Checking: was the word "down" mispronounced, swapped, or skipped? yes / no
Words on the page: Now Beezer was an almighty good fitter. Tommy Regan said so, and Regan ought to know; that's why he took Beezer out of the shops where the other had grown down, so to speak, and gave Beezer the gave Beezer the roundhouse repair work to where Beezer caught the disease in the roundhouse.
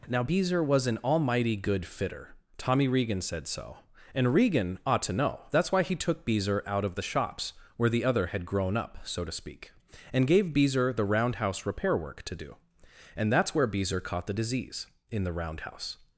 yes